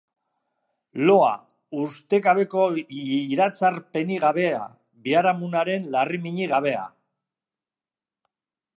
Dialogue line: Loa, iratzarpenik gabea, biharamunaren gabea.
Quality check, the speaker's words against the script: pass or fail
fail